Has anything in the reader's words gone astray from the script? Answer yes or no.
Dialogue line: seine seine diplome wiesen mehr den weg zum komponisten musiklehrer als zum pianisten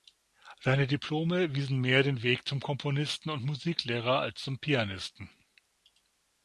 yes